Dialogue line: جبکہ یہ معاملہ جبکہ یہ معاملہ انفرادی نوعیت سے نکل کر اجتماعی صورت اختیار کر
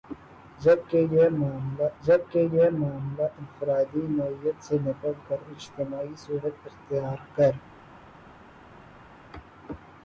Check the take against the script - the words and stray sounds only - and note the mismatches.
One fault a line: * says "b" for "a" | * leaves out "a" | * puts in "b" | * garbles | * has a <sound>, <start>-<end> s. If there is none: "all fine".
all fine